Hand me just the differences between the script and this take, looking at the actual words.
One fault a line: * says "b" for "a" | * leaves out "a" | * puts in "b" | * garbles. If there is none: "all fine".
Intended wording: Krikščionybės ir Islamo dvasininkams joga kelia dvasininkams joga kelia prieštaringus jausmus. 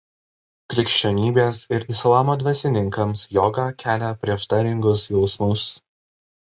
* leaves out "dvasininkams joga kelia"